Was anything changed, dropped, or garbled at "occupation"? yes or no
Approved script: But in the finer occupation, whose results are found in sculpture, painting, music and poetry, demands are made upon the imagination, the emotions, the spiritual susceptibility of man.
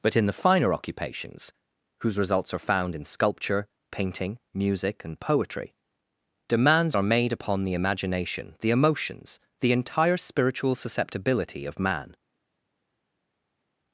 yes